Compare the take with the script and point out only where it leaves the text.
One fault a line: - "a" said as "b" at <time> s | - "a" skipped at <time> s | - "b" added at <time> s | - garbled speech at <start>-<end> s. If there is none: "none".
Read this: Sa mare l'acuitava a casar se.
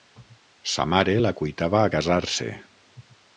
none